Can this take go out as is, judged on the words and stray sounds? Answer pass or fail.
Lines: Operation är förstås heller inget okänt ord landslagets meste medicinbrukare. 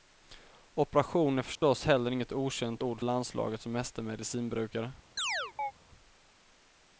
fail